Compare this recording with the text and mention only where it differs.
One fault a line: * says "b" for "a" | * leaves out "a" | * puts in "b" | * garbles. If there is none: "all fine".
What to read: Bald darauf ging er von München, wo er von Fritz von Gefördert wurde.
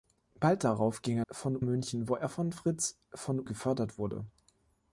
all fine